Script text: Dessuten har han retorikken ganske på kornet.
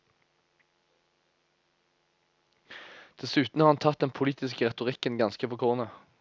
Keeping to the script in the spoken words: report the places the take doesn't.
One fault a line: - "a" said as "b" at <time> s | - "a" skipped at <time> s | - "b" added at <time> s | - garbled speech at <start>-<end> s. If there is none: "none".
- "tatt den politiske" added at 3.8 s